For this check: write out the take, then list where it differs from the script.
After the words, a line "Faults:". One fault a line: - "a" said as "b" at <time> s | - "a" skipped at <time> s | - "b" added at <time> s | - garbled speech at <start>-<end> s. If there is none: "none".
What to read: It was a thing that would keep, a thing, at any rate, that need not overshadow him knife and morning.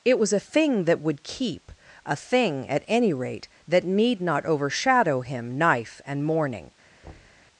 It was a thing that would keep, a thing, at any rate, that need not overshadow him knife and morning.
Faults:
none